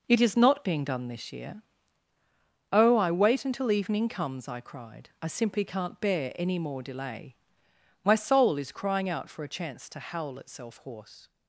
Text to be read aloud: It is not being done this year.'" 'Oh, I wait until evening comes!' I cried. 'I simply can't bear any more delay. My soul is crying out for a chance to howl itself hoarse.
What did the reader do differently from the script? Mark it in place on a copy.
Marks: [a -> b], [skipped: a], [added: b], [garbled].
It is not being done this year.'" 'Oh, I wait until evening comes!' I cried. 'I simply can't bear any more delay. My soul is crying out for a chance to howl itself hoarse.